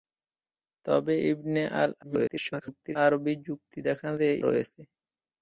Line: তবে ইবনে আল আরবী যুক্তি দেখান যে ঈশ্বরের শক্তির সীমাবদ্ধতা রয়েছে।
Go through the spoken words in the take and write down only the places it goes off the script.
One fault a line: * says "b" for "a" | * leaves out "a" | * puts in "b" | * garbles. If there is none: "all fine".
* garbles
* leaves out "ঈশ্বরের শক্তির সীমাবদ্ধতা"